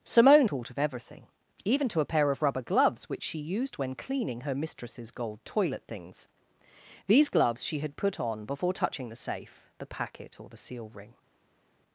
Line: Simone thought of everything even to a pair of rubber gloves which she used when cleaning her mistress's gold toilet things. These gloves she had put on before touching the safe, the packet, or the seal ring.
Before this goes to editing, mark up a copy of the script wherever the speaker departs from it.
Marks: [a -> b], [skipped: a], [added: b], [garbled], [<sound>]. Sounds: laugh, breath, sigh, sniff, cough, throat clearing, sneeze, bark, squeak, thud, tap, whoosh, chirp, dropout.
Simone thought of everything even to a pair of rubber gloves which she used when cleaning her mistress's gold toilet things. These gloves she had put on before touching the safe, the packet, or the seal ring.